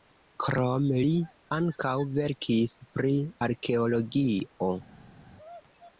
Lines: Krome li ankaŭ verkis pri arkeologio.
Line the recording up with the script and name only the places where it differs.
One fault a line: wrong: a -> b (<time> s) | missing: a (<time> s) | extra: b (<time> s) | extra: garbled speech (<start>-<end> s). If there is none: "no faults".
no faults